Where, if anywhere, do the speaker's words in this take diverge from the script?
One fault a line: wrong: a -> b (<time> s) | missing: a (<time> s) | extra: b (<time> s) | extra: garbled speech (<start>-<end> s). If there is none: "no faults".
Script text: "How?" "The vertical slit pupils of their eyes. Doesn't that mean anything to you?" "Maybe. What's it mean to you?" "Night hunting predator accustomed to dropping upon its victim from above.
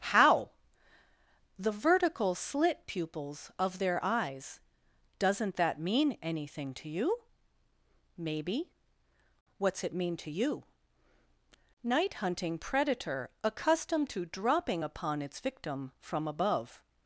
no faults